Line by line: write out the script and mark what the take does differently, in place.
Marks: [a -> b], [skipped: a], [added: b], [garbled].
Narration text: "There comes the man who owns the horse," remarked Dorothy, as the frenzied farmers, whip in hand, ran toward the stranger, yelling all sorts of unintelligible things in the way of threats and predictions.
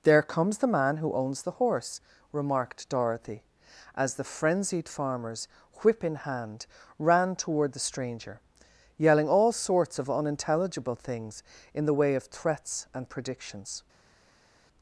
"There comes the man who owns the horse," remarked Dorothy, as the frenzied farmers, whip in hand, ran toward the stranger, yelling all sorts of unintelligible things in the way of threats and predictions.